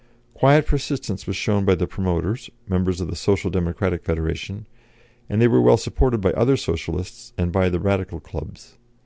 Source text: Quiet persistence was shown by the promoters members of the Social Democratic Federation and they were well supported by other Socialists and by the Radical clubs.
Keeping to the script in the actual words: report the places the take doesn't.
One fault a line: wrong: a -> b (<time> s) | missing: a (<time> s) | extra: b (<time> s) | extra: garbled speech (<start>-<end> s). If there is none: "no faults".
no faults